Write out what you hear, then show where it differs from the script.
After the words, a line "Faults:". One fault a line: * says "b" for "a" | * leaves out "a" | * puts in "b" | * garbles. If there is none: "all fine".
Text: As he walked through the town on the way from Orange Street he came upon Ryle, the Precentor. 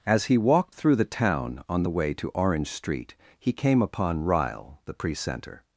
As he walked through the town on the way to Orange Street he came upon Ryle, the Precentor.
Faults:
* says "to" for "from"